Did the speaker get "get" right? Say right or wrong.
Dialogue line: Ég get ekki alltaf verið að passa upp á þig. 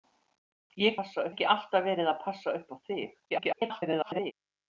wrong